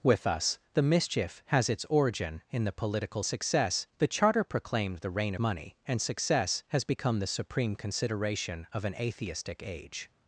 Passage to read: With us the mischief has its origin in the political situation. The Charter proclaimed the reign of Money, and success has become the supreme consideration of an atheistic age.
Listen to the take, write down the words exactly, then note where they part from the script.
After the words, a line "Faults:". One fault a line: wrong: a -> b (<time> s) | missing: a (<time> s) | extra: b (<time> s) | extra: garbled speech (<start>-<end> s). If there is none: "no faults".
With us the mischief has its origin in the political success. The Charter proclaimed the reign Money, and success has become the supreme consideration of an atheistic age.
Faults:
wrong: situation -> success (3.2 s)
missing: of (5.3 s)